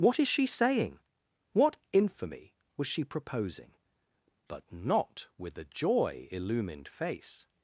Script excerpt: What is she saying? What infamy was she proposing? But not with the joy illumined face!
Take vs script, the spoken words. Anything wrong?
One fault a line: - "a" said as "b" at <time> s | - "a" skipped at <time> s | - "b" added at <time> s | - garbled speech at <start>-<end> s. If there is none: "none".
none